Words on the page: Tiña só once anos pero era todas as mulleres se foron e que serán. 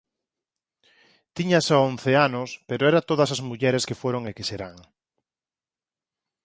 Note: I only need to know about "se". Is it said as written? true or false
false